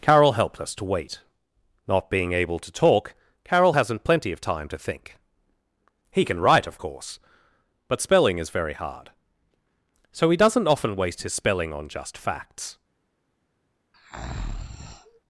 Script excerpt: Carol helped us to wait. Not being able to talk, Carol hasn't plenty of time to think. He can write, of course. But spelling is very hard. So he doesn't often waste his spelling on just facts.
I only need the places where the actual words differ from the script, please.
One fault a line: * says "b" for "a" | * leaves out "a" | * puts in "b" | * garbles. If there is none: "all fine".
all fine